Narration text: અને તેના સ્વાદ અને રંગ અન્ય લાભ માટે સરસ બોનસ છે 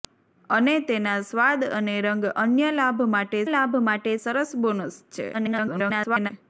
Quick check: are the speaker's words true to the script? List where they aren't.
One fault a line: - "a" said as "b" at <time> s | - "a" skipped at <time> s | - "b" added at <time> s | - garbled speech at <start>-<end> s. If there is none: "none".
- "લાભ માટે" added at 3.5 s
- garbled speech at 5.3-6.3 s